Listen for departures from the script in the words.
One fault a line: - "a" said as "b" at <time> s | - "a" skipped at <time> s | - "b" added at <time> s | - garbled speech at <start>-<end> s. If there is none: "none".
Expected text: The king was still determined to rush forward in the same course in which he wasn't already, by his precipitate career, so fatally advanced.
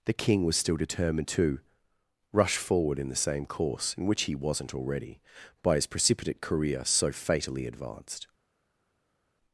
none